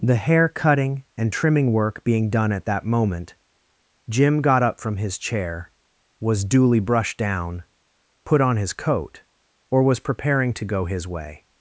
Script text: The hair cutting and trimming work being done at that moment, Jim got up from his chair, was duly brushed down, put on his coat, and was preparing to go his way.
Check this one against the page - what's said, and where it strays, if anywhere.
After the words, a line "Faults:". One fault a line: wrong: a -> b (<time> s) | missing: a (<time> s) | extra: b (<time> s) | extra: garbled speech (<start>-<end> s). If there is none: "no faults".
The hair cutting and trimming work being done at that moment, Jim got up from his chair, was duly brushed down, put on his coat, or was preparing to go his way.
Faults:
wrong: and -> or (9.7 s)